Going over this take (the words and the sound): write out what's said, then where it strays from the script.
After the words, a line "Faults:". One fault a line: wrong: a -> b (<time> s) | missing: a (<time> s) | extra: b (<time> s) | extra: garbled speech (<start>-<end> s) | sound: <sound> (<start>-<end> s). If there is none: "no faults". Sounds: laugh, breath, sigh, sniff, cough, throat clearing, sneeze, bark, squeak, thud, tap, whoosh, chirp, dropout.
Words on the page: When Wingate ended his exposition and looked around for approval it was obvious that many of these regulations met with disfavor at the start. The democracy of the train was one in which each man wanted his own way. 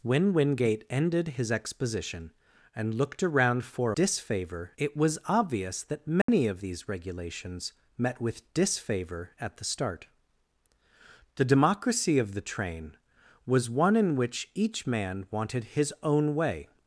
When Wingate ended his exposition and looked around for disfavor it was obvious that many of these regulations met with disfavor at the start. The democracy of the train was one in which each man wanted his own way.
Faults:
wrong: approval -> disfavor (3.9 s)
sound: dropout (6.2-6.3 s)